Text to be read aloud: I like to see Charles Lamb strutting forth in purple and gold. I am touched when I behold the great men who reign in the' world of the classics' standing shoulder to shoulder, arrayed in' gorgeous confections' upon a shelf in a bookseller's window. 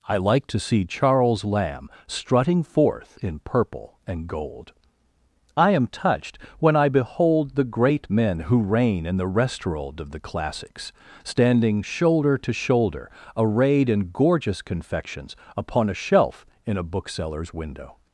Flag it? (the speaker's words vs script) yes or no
yes